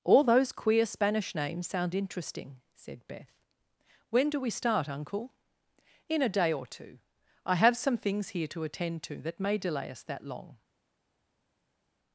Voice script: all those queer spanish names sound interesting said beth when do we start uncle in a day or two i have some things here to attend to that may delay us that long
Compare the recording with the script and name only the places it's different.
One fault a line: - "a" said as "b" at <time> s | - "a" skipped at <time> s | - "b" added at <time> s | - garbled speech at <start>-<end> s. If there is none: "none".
none